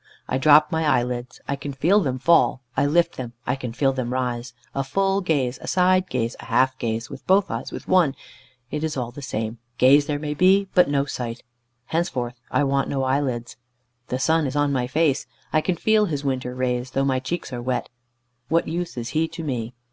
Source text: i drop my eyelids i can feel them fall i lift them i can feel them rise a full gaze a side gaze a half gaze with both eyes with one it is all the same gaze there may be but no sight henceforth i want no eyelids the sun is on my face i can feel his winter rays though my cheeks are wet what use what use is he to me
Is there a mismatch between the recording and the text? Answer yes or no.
yes